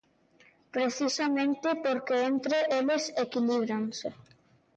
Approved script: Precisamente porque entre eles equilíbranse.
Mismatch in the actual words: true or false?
false